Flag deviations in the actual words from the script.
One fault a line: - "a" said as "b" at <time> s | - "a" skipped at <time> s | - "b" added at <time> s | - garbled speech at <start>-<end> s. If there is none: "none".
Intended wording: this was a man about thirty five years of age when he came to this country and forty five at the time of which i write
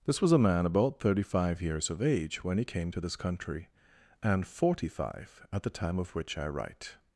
none